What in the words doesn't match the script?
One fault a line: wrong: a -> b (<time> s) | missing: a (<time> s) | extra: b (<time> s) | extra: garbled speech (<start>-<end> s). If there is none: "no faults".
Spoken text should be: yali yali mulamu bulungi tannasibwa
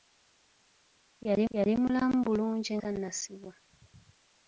no faults